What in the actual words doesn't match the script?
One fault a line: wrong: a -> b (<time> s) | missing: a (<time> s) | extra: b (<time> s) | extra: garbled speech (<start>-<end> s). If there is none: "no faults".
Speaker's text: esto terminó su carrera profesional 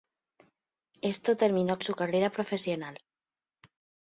no faults